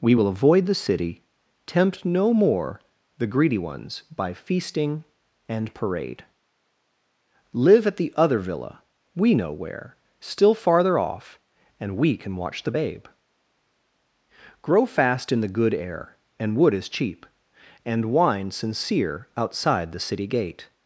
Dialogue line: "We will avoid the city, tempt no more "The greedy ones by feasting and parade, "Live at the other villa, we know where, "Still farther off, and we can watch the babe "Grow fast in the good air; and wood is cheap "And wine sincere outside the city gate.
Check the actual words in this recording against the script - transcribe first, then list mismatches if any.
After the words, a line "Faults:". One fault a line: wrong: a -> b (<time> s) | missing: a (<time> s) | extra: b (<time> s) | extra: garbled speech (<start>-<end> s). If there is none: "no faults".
"We will avoid the city, tempt no more "The greedy ones by feasting and parade, "Live at the other villa, we know where, "Still farther off, and we can watch the babe "Grow fast in the good air; and wood is cheap "And wine sincere outside the city gate.
Faults:
no faults